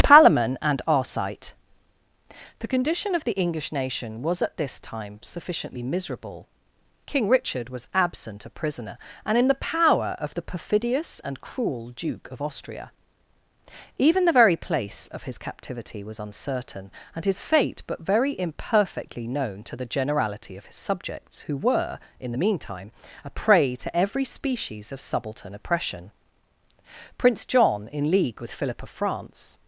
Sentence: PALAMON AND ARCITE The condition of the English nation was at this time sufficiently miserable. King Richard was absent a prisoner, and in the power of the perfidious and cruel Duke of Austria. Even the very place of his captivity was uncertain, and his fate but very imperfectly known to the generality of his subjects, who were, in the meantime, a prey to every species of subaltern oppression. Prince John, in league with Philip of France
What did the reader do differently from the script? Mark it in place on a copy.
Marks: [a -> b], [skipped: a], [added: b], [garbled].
PALAMON AND ARCITE The condition of the English nation was at this time sufficiently miserable. King Richard was absent a prisoner, and in the power of the perfidious and cruel Duke of Austria. Even the very place of his captivity was uncertain, and his fate but very imperfectly known to the generality of his subjects, who were, in the meantime, a prey to every species of subaltern oppression. Prince John, in league with Philip of France